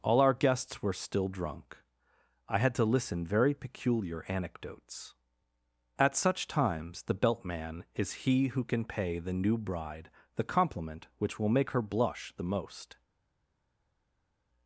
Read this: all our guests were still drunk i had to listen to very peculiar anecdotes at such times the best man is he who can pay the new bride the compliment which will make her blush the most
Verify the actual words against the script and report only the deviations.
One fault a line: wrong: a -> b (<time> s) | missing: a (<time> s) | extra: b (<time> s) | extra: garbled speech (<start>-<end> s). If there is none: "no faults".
missing: to (3.2 s)
wrong: best -> belt (7.1 s)